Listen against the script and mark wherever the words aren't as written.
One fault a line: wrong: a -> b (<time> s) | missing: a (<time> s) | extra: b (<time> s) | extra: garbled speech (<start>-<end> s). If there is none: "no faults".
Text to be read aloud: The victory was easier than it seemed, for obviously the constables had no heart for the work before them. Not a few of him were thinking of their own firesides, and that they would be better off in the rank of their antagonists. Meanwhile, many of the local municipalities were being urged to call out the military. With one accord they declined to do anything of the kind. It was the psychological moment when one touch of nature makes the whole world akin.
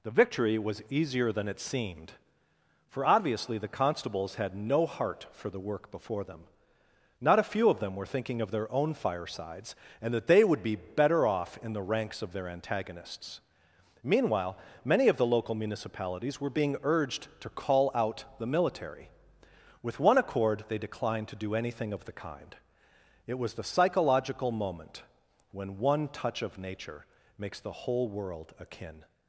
wrong: him -> them (7.8 s)
wrong: rank -> ranks (11.8 s)